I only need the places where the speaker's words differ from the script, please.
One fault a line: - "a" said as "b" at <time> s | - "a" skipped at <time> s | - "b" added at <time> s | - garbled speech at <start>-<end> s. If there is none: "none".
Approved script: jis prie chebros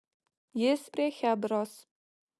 none